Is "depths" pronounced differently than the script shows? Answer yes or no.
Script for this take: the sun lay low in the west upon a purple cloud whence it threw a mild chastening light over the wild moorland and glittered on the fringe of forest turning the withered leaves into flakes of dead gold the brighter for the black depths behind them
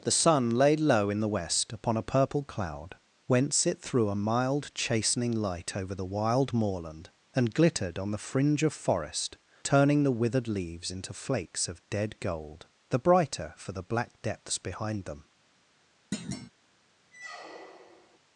no